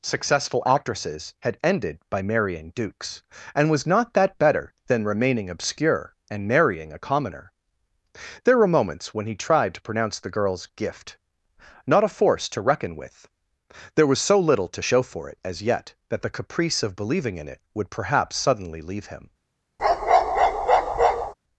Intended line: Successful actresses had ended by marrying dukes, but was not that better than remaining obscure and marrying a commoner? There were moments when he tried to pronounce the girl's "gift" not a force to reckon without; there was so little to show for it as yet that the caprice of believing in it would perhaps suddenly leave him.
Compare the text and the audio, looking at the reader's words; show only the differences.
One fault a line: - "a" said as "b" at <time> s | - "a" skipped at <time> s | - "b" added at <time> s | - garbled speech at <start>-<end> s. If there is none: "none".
- "but" said as "and" at 3.5 s
- "without" said as "with" at 12.9 s